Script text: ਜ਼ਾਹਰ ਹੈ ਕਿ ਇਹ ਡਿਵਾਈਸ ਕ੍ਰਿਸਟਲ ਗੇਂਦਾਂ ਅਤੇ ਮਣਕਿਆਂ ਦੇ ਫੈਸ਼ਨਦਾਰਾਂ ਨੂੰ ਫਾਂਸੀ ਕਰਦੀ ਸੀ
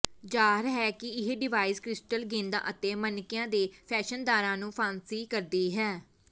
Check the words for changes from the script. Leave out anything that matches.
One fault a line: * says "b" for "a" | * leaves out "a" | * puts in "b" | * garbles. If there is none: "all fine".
* says "ਹੈ" for "ਸੀ"